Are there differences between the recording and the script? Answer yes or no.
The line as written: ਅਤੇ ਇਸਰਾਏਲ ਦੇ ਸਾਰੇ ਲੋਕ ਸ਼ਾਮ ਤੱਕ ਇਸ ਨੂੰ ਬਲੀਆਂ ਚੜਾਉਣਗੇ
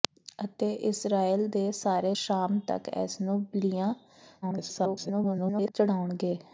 yes